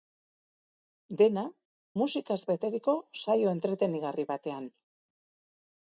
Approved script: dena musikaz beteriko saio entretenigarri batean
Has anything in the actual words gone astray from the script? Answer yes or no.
no